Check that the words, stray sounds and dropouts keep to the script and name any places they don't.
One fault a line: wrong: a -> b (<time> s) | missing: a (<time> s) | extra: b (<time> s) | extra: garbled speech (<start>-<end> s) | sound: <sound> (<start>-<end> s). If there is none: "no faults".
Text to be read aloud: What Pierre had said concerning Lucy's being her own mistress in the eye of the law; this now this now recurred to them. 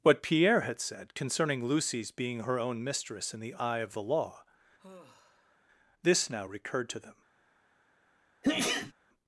sound: sigh (4.8-5.6 s)
missing: this now (6.4 s)
sound: sneeze (8.4-8.9 s)